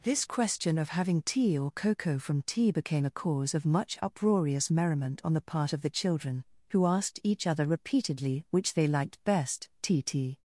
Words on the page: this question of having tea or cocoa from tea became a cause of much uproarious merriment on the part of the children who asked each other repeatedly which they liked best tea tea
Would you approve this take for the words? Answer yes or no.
yes